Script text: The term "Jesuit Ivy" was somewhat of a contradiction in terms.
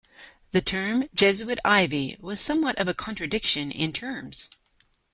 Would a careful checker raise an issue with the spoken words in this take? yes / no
no